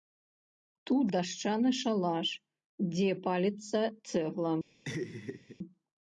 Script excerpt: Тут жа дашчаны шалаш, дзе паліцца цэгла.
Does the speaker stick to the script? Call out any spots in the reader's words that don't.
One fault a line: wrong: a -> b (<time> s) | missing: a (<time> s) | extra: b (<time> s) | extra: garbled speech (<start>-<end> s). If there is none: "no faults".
missing: жа (1.1 s)